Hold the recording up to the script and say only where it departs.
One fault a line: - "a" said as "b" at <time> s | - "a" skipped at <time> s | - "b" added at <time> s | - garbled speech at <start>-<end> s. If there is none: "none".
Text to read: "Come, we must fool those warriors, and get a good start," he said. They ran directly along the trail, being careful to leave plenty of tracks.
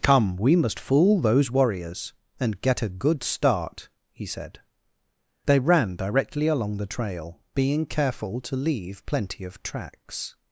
none